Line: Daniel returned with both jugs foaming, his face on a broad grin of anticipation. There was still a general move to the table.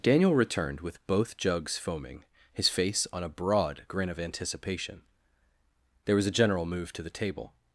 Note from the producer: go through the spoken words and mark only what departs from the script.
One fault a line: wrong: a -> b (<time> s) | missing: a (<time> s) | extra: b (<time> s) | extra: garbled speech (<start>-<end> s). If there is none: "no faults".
missing: still (6.3 s)